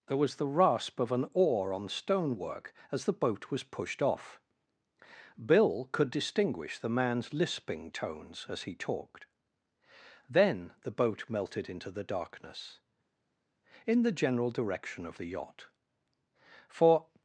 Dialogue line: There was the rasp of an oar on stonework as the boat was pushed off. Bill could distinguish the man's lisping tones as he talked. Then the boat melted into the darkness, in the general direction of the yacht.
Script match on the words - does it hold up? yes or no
no